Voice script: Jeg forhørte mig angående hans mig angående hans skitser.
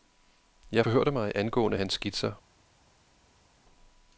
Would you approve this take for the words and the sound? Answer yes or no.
no